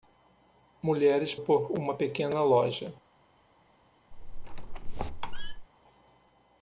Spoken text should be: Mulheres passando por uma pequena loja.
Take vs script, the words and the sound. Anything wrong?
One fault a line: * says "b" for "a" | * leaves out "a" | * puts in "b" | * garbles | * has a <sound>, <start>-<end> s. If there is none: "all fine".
* leaves out "passando"
* has a squeak, 4.1-5.7 s